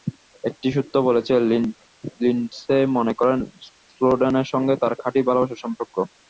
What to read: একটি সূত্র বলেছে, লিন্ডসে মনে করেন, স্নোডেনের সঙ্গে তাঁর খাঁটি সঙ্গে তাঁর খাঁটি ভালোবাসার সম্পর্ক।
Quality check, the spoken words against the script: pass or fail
fail